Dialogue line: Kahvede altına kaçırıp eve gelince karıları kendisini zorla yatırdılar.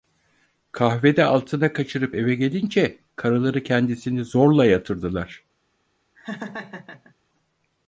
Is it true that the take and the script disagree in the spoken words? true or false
false